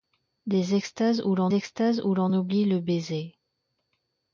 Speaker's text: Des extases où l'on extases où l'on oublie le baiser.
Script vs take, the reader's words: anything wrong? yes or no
no